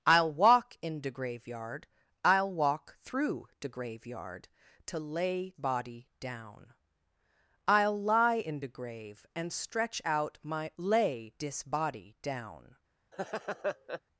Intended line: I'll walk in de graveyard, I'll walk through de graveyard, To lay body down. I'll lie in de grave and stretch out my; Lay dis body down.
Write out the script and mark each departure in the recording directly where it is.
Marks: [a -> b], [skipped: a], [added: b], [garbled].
I'll walk in de graveyard, I'll walk through de graveyard, To lay body down. I'll lie in de grave and stretch out my; Lay dis body down.